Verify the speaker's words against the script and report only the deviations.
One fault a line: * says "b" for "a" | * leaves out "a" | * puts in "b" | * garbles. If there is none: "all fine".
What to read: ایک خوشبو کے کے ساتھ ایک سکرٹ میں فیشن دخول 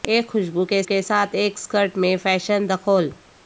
all fine